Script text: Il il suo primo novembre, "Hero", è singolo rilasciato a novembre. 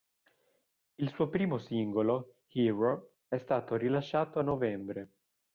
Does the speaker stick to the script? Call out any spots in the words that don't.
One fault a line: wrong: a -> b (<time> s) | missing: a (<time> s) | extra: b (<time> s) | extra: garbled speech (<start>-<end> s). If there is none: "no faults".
missing: il (1.1 s)
wrong: novembre -> singolo (1.6 s)
wrong: singolo -> stato (3.4 s)